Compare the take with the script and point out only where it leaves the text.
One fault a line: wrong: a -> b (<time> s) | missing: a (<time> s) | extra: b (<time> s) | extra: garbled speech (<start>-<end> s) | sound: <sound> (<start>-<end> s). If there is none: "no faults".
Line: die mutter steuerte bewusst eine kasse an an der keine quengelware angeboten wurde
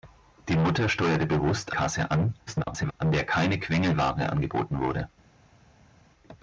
missing: eine (1.7 s)
extra: garbled speech (2.5-2.9 s)